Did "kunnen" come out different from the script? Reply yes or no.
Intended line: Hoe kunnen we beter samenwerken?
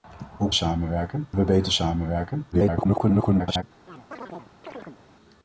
yes